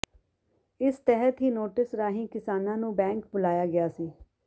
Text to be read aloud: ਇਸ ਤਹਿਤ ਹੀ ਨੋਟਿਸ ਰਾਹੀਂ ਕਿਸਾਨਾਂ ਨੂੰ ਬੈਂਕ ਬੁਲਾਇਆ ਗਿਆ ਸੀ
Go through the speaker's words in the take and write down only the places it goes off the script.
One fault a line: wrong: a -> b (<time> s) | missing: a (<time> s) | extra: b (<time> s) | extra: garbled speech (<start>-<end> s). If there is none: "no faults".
no faults